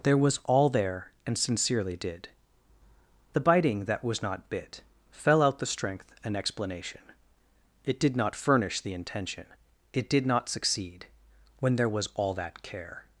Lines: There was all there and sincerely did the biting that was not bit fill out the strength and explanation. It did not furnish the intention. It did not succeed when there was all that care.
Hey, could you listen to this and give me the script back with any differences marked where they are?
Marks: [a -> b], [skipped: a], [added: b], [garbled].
There was all there and sincerely did the biting that was not bit [fill -> fell] out the strength and explanation. It did not furnish the intention. It did not succeed when there was all that care.